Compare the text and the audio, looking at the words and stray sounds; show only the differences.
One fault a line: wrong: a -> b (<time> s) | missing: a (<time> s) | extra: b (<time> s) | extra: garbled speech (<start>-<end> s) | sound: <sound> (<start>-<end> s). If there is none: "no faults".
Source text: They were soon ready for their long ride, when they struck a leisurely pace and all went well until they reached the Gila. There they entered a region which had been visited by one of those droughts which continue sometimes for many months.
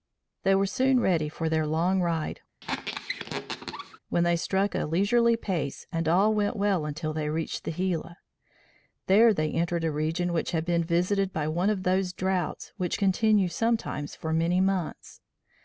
sound: squeak (2.6-4.0 s)